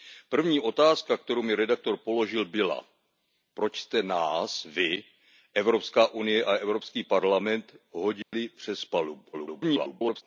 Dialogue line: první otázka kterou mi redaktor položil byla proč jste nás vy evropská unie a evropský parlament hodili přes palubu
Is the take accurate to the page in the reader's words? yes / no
no